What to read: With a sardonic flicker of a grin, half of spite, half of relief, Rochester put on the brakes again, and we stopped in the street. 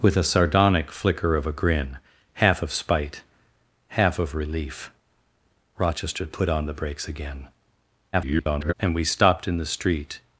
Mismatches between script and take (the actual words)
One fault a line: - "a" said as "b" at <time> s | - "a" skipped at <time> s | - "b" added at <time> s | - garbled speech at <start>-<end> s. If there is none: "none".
- garbled speech at 8.1-8.7 s